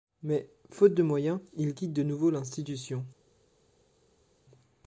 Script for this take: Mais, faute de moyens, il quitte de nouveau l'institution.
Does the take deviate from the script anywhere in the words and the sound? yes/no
no